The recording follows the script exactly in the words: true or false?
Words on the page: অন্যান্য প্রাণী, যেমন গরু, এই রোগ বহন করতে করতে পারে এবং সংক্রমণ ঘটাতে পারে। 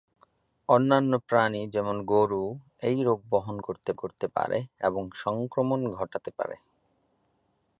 true